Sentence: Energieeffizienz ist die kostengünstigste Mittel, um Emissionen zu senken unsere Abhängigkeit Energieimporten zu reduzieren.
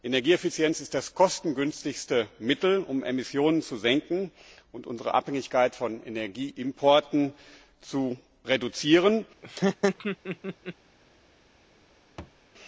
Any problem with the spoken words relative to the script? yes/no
yes